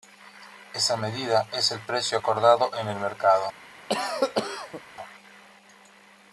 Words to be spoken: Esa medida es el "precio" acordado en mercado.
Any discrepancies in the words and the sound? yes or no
yes